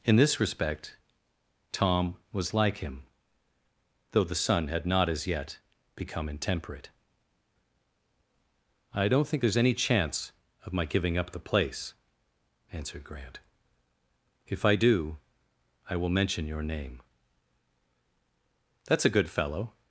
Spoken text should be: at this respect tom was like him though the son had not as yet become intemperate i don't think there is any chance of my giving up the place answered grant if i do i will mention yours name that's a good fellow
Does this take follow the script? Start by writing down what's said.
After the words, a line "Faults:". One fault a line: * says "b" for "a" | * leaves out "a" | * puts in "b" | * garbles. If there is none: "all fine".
in this respect tom was like him though the son had not as yet become intemperate i don't think there is any chance of my giving up the place answered grant if i do i will mention your name that's a good fellow
Faults:
* says "in" for "at"
* says "your" for "yours"